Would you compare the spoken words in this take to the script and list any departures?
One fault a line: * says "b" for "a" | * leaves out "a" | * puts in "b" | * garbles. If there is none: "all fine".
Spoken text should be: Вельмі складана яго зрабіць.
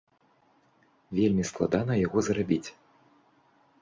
all fine